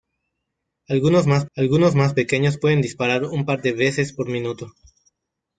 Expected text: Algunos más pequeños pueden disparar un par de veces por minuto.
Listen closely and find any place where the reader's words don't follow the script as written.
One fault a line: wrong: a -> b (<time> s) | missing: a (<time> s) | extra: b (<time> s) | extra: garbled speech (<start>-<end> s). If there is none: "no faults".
extra: algunos más (1.5 s)